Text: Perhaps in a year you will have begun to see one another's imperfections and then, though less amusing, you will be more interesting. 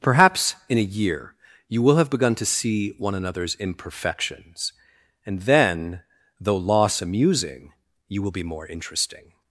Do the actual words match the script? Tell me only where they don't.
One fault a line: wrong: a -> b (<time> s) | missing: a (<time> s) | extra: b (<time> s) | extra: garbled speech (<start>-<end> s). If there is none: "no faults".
wrong: less -> loss (6.6 s)